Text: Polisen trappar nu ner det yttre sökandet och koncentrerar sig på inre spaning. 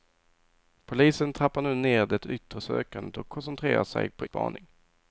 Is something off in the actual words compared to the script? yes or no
yes